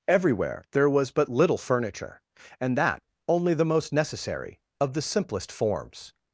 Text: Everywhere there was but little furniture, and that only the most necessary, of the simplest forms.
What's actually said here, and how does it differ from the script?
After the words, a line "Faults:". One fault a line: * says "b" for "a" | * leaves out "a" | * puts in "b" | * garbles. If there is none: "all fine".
Everywhere there was but little furniture, and that only the most necessary, of the simplest forms.
Faults:
all fine